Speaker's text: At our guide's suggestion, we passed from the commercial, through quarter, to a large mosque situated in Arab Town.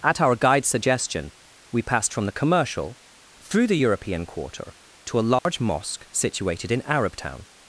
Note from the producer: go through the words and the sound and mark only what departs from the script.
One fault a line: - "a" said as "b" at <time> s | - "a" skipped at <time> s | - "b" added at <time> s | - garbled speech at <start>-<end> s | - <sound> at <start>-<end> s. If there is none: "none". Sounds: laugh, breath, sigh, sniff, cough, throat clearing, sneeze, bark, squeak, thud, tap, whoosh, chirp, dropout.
- "the European" added at 3.7 s
- dropout at 5.4-5.5 s